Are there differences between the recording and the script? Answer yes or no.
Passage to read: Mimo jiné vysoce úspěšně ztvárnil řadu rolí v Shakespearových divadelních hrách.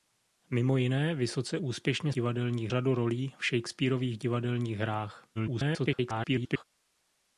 yes